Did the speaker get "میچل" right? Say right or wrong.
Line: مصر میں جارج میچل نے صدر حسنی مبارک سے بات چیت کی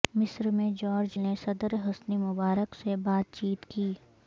wrong